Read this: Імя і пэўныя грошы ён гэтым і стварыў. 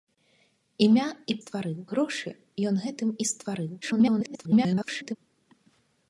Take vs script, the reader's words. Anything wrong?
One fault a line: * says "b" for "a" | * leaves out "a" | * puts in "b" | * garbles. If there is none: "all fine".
* says "стварыў" for "пэўныя"
* garbles